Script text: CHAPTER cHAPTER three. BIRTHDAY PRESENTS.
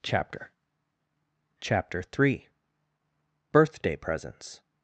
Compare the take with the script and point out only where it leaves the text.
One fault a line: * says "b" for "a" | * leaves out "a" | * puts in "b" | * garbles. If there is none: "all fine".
all fine